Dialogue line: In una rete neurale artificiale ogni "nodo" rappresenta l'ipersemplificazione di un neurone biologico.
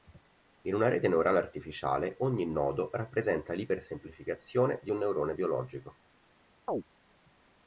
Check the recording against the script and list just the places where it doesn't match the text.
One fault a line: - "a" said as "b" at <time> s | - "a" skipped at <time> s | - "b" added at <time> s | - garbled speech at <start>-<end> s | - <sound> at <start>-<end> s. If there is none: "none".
- chirp at 6.7-6.8 s